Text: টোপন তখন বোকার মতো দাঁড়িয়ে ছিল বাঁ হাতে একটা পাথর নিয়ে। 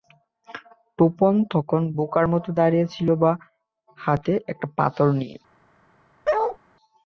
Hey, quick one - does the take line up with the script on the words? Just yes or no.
yes